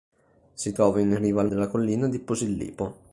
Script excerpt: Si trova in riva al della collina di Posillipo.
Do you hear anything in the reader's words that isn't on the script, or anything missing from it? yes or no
no